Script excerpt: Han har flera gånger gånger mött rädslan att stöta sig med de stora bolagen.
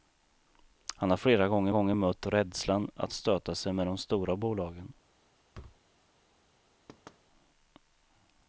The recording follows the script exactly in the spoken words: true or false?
true